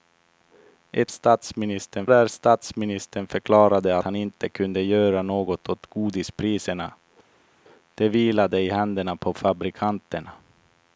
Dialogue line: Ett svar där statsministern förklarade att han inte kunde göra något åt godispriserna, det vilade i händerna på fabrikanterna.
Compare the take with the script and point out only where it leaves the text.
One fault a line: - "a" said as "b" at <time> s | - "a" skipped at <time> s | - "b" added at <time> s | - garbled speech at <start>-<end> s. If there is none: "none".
- "svar" said as "statsministern" at 1.1 s
- "att" skipped at 4.0 s